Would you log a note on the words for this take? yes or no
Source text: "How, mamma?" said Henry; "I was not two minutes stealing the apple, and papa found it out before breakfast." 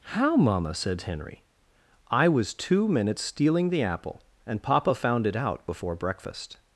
yes